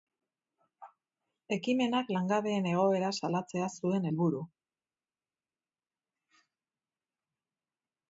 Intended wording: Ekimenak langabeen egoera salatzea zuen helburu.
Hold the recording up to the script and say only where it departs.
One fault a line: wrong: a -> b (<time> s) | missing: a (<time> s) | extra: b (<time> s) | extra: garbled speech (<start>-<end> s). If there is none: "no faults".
no faults